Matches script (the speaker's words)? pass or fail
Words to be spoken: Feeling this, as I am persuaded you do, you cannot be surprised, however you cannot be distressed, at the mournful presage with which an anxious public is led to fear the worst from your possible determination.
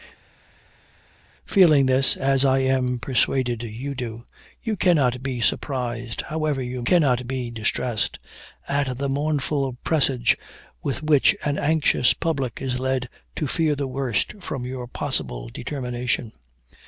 pass